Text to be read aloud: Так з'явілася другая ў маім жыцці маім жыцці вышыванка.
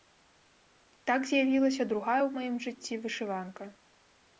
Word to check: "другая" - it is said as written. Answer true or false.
true